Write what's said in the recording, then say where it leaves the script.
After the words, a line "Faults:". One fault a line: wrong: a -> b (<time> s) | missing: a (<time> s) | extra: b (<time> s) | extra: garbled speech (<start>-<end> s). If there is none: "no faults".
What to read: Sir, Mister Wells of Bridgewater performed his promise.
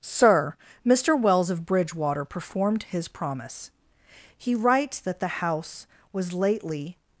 Sir, Mister Wells of Bridgewater performed his promise. He writes that the house was lately
Faults:
extra: He writes that the house was lately (4.3 s)